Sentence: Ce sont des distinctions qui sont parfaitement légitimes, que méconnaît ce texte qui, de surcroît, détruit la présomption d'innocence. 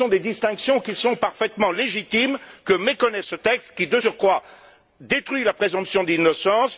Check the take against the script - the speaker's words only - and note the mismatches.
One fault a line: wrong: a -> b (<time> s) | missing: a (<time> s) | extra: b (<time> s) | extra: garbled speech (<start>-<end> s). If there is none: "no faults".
no faults